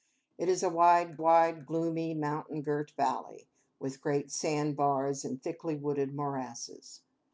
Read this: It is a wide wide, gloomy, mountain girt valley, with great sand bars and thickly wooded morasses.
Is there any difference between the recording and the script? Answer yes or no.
no